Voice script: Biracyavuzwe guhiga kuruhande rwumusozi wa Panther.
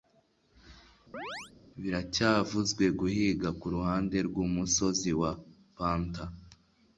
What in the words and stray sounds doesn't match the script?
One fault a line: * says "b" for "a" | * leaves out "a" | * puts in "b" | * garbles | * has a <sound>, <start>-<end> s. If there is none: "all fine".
* has a chirp, 1.1-1.5 s